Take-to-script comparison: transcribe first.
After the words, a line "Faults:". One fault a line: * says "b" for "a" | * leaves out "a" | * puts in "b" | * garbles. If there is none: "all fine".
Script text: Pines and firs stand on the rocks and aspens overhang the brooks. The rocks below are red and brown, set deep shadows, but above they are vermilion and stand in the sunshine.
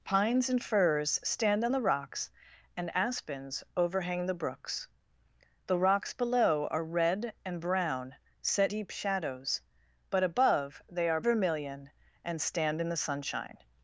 Pines and firs stand on the rocks and aspens overhang the brooks. The rocks below are red and brown, set deep shadows, but above they are vermilion and stand in the sunshine.
Faults:
all fine